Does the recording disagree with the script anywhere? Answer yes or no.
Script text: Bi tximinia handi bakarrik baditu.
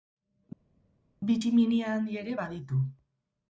yes